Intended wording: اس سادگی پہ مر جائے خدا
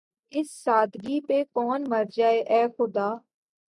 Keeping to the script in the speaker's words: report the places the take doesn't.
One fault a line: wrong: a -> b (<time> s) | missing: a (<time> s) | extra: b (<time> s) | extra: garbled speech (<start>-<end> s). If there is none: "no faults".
extra: کون (1.6 s)
extra: اے (2.5 s)